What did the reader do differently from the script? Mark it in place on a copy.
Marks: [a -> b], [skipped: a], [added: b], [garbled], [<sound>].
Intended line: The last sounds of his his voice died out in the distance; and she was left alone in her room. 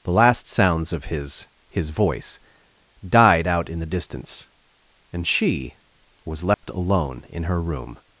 The last sounds of his his voice died out in the distance; and she was left [dropout] alone in her room.